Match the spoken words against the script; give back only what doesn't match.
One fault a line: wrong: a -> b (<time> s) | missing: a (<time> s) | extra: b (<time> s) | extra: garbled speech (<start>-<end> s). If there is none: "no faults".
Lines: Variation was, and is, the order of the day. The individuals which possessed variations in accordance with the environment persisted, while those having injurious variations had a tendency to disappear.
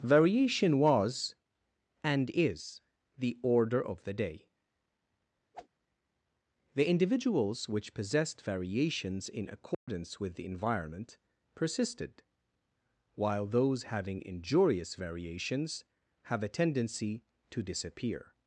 wrong: had -> have (16.2 s)